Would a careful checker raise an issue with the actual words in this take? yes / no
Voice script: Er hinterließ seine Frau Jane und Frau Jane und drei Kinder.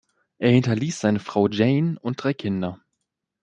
yes